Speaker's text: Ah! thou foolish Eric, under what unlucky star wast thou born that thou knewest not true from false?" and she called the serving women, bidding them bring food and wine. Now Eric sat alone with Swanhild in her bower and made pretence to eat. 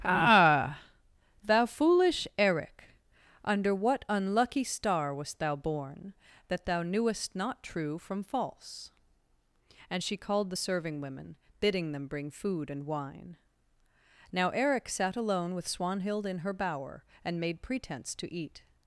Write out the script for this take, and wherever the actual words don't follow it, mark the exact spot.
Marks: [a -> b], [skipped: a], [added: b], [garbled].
Ah! thou foolish Eric, under what unlucky star wast thou born that thou knewest not true from false?" and she called the serving women, bidding them bring food and wine. Now Eric sat alone with Swanhild in her bower and made pretence to eat.